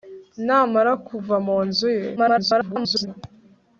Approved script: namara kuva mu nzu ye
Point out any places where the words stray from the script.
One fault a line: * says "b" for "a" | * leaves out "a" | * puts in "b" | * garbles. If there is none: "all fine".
* garbles